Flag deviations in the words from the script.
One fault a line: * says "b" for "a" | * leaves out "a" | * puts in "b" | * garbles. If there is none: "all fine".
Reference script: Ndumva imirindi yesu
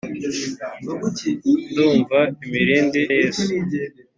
all fine